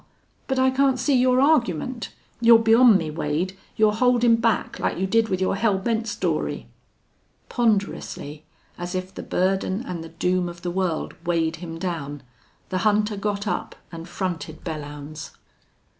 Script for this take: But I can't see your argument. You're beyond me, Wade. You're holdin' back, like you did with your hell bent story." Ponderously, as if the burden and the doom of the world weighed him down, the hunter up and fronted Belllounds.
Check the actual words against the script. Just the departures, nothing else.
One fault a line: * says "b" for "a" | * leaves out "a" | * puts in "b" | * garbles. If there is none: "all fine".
* puts in "got"